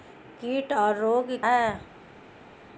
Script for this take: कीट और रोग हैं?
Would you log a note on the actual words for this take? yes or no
no